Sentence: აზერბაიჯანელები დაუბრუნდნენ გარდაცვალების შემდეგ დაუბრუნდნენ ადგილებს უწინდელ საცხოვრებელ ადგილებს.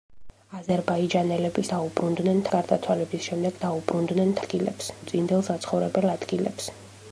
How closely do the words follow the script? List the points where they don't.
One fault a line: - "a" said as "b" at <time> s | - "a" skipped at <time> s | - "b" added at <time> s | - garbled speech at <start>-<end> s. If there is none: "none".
none